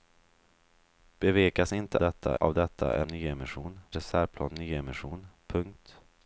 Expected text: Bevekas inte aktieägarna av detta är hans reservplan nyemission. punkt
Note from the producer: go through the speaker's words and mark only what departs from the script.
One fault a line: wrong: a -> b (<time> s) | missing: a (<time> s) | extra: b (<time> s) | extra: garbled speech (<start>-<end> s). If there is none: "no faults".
wrong: aktieägarna -> detta (2.0 s)
wrong: hans -> nyemission (3.1 s)